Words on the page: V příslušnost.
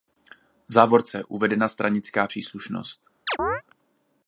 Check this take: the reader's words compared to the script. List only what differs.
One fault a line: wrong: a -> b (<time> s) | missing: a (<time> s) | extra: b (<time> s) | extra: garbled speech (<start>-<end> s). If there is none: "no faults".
extra: závorce uvedena stranická (0.7 s)